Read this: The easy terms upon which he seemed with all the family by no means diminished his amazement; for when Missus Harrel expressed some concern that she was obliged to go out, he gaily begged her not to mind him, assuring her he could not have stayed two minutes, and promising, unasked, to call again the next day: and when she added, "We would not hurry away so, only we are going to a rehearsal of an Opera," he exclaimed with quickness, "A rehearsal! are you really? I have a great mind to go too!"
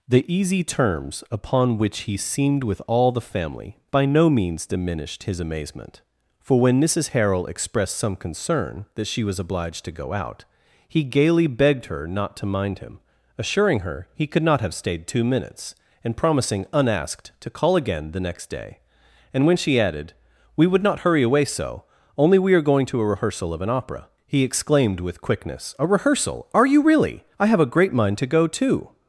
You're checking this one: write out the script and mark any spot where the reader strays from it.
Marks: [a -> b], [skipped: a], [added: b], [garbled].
The easy terms upon which he seemed with all the family by no means diminished his amazement; for when Missus Harrel expressed some concern that she was obliged to go out, he gaily begged her not to mind him, assuring her he could not have stayed two minutes, and promising, unasked, to call again the next day: and when she added, "We would not hurry away so, only we are going to a rehearsal of an Opera," he exclaimed with quickness, "A rehearsal! are you really? I have a great mind to go too!"